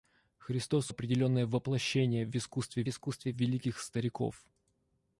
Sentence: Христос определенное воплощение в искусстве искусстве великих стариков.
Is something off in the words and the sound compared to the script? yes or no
no